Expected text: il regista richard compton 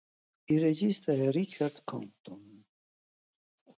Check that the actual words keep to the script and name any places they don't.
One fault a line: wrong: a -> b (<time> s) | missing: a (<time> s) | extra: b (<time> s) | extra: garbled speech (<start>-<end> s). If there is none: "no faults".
extra: è (1.1 s)